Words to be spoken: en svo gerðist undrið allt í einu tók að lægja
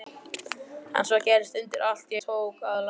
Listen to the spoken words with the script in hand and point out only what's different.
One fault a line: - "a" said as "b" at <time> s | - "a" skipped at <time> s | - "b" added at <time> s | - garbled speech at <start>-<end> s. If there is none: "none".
- "einu" skipped at 2.2 s